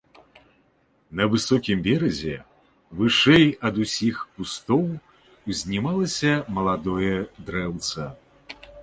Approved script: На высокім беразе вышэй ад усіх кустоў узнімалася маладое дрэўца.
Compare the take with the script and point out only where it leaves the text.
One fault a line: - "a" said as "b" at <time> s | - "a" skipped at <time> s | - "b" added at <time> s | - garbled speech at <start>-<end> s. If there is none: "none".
none